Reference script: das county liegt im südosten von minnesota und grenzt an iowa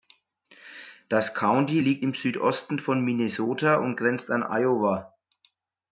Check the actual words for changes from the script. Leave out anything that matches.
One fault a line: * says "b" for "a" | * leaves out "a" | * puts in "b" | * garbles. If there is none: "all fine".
all fine